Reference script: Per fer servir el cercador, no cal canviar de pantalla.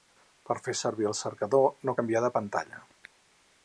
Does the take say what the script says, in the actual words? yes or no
no